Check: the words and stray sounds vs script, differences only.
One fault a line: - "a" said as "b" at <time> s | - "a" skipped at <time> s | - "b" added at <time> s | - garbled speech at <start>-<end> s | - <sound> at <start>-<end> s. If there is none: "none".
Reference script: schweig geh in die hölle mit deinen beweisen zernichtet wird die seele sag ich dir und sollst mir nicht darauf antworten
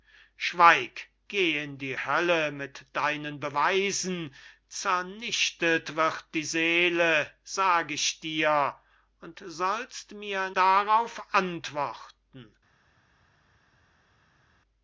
- "nicht" skipped at 10.5 s